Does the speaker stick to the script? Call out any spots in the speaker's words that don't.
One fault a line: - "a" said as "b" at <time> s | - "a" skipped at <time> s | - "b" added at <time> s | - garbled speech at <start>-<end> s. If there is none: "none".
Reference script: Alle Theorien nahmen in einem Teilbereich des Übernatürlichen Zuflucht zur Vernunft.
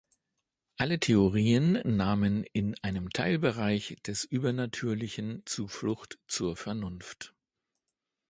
none